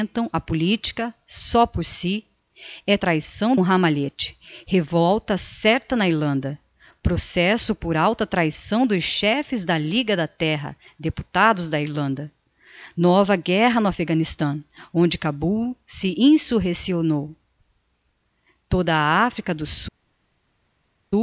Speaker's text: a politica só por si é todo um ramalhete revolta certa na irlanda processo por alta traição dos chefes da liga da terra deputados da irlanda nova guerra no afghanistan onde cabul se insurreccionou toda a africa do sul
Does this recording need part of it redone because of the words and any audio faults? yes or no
yes